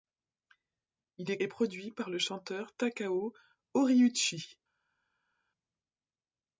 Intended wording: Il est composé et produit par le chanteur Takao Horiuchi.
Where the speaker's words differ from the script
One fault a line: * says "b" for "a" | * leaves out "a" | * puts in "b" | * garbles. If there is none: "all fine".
* leaves out "composé"